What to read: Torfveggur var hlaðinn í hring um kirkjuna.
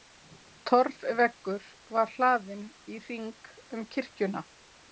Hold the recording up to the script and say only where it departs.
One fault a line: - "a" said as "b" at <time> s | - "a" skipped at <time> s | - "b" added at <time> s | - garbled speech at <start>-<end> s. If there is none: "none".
none